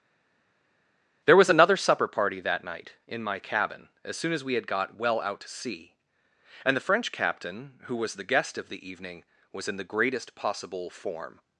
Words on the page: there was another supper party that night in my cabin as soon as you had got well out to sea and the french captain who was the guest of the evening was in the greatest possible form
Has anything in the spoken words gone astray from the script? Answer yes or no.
yes